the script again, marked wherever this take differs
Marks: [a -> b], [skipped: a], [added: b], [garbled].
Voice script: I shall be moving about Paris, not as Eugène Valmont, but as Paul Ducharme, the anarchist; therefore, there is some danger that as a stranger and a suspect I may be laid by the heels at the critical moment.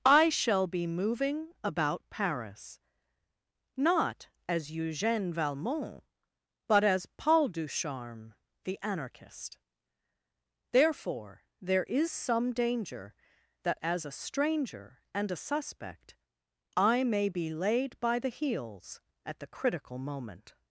I shall be moving about Paris, not as Eugène Valmont, but as Paul Ducharme, the anarchist; therefore, there is some danger that as a stranger and a suspect I may be laid by the heels at the critical moment.